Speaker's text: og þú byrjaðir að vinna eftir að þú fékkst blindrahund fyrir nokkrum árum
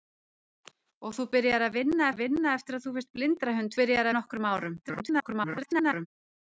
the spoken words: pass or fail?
fail